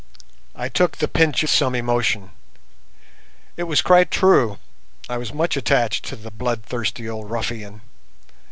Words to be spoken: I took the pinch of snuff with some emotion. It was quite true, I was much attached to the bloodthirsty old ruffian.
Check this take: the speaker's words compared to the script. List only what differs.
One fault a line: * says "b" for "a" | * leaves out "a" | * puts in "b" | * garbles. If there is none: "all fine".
* leaves out "of snuff with"